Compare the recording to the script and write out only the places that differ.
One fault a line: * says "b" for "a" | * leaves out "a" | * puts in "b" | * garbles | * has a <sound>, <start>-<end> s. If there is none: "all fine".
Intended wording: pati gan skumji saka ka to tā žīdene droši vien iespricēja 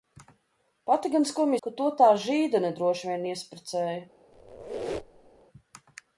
* leaves out "saka"
* has a squeak, 4.3-5.4 s